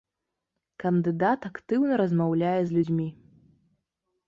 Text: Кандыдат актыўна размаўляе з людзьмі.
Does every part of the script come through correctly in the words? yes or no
yes